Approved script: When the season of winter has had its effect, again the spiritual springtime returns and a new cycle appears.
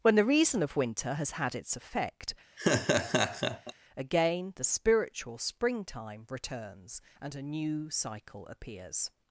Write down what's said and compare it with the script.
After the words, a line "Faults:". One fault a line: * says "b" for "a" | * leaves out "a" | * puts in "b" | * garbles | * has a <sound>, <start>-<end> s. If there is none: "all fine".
When the reason of winter has had its effect, again the spiritual springtime returns and a new cycle appears.
Faults:
* says "reason" for "season"
* has a laugh, 2.6-3.7 s